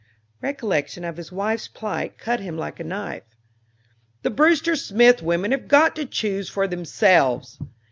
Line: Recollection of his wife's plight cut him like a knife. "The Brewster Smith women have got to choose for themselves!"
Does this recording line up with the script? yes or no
yes